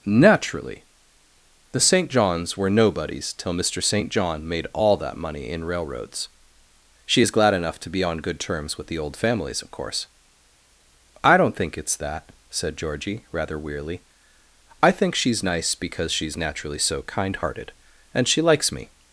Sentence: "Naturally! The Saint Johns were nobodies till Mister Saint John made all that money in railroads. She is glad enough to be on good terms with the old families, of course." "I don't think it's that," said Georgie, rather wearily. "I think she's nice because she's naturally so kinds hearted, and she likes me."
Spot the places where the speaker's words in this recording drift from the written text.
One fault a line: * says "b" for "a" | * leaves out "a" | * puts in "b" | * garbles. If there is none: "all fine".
* says "kind" for "kinds"